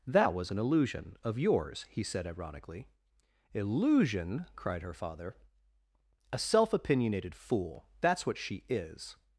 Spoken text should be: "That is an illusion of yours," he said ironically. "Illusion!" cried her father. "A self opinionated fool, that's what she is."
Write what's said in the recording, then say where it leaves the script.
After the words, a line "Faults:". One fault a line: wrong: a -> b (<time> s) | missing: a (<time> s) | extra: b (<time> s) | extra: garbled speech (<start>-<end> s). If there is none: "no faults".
"That was an illusion of yours," he said ironically. "Illusion!" cried her father. "A self opinionated fool, that's what she is."
Faults:
wrong: is -> was (0.3 s)